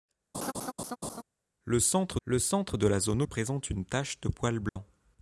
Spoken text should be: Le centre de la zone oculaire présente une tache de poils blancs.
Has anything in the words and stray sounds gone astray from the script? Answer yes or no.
yes